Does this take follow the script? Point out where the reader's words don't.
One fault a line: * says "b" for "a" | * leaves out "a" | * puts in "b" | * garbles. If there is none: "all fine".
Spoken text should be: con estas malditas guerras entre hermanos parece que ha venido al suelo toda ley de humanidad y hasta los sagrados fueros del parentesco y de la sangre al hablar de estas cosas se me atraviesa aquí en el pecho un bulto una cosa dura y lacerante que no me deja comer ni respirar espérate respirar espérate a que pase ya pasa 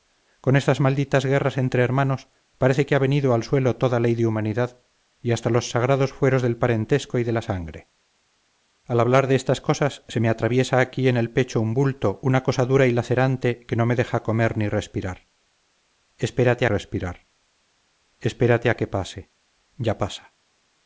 all fine